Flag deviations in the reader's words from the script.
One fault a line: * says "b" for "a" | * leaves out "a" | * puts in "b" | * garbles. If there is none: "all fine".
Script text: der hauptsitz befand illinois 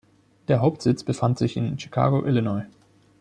* puts in "sich in chicago"